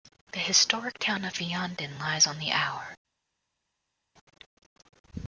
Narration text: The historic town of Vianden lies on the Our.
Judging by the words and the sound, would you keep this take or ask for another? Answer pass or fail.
pass